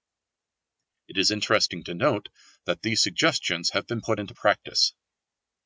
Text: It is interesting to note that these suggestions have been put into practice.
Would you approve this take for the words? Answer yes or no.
yes